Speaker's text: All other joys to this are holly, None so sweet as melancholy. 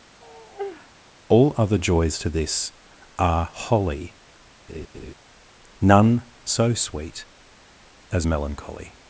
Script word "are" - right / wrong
right